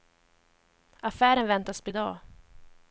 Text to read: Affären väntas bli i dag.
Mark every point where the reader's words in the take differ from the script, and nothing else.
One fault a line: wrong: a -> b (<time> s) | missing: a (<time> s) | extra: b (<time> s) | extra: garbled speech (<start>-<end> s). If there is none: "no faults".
no faults